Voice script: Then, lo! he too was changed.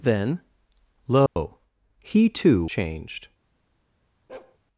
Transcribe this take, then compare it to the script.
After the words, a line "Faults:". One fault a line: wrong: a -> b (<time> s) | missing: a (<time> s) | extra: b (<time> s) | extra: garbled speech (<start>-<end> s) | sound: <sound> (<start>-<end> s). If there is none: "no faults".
Then, lo! he too changed.
Faults:
sound: dropout (1.3-1.4 s)
missing: was (2.6 s)
sound: bark (4.3-4.6 s)